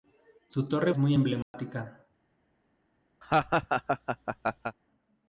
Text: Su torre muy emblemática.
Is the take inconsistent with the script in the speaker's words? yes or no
no